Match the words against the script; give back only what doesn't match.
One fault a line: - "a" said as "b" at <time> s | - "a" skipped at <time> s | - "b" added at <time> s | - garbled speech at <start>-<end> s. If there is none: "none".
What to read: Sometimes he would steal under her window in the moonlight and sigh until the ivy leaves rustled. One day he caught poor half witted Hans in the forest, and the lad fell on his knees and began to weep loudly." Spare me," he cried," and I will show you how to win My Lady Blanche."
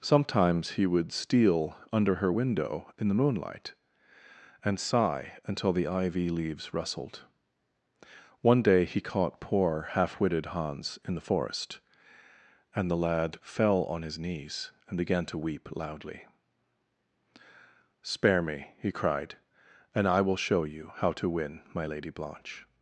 none